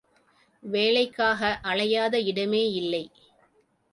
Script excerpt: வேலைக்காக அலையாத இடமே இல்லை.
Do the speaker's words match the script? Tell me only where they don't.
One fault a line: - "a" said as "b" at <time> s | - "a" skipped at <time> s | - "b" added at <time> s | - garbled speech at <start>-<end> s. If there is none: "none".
none